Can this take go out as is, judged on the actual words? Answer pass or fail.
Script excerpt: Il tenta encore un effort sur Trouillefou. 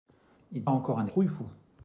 fail